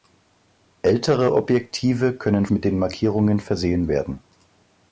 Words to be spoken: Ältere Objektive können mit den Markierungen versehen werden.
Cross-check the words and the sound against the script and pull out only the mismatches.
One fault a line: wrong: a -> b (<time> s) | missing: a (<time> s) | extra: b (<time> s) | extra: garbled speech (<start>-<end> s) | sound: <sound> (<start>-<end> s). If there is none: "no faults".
no faults